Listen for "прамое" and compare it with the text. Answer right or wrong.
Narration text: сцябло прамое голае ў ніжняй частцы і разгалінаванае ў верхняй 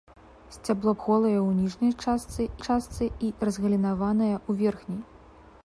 wrong